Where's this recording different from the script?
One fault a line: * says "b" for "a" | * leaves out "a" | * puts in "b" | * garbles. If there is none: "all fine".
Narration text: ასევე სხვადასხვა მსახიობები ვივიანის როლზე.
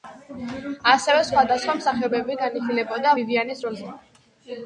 * puts in "განიხილებოდა"